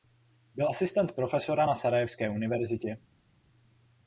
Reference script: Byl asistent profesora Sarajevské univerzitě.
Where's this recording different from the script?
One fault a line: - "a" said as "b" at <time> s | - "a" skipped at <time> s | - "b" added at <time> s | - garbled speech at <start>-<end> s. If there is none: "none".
- "na" added at 1.6 s